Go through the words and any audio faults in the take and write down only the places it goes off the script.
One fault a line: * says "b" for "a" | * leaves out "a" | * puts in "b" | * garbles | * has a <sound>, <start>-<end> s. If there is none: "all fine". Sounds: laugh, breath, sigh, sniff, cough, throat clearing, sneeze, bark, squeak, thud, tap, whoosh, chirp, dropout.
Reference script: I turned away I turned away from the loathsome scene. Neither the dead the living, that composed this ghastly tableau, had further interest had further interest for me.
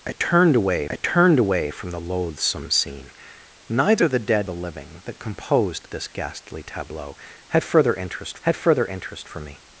all fine